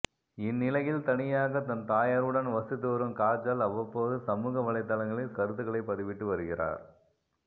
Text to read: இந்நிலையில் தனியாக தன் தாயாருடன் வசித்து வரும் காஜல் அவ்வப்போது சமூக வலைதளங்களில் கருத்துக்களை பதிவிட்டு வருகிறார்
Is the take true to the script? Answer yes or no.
yes